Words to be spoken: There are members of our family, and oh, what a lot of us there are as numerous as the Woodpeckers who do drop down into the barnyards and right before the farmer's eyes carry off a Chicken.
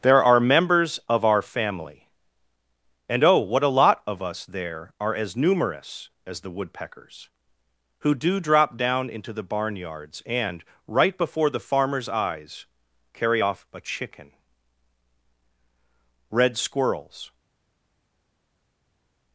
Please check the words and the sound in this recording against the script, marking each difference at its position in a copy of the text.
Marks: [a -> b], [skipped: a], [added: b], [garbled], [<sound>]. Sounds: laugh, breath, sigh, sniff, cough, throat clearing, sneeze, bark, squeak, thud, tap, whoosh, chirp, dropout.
There are members of our family, and oh, what a lot of us there are as numerous as the Woodpeckers who do drop down into the barnyards and right before the farmer's eyes carry off a Chicken. [added: Red Squirrels]